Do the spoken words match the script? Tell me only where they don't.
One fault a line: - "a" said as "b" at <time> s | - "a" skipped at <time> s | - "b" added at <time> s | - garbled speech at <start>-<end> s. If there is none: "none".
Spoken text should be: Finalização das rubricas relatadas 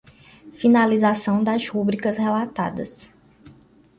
none